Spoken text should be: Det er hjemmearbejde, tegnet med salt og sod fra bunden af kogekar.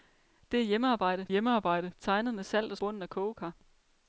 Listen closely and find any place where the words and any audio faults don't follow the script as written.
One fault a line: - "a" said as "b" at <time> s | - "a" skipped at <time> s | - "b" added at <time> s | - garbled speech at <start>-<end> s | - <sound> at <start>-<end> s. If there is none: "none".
- "hjemmearbejde" added at 1.3 s
- "sod fra" skipped at 2.8 s